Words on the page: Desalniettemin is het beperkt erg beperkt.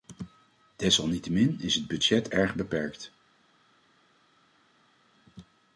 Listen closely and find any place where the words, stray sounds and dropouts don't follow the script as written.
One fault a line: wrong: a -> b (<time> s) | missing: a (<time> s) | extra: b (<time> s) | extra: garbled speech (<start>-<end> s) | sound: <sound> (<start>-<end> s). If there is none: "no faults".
wrong: beperkt -> budget (1.9 s)